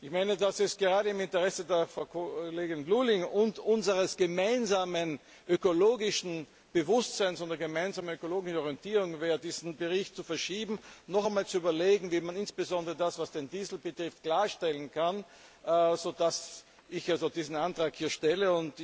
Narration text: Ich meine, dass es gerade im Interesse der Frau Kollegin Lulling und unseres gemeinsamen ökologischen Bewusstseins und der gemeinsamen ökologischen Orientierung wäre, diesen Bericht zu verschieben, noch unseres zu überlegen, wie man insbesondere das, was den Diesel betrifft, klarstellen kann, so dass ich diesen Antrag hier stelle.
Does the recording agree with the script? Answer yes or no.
no